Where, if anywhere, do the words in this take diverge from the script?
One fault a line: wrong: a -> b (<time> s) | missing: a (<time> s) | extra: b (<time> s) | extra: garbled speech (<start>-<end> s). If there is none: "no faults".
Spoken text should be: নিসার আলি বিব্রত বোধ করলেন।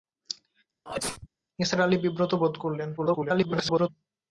extra: garbled speech (3.0-3.9 s)